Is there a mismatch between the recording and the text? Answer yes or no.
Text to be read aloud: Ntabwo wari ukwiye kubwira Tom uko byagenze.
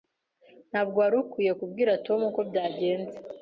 no